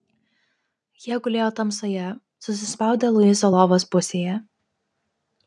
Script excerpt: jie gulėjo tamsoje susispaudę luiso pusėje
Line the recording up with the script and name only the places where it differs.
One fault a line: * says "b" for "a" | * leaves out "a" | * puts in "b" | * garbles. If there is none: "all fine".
* puts in "lovos"